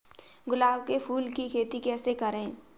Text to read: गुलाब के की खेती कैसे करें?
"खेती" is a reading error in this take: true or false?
false